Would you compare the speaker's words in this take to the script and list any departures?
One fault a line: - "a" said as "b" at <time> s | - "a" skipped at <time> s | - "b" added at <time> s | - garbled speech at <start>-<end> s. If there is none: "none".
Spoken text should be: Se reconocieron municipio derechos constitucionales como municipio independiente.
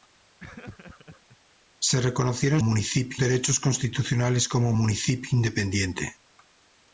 none